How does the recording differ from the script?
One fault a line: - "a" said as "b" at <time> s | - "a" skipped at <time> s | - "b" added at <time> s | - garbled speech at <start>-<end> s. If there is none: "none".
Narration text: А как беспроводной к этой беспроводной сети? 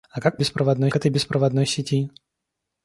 none